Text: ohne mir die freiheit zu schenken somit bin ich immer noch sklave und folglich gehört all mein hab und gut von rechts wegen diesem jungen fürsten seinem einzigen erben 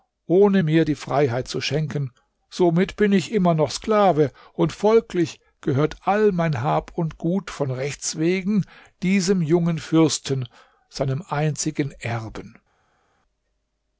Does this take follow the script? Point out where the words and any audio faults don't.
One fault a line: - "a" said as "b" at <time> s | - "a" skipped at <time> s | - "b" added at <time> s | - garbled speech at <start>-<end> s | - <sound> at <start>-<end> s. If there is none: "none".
none